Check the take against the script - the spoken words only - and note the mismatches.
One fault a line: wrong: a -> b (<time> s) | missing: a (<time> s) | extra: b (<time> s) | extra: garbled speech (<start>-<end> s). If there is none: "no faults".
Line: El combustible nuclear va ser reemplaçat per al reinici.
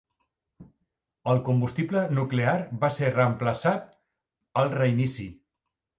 missing: per (3.9 s)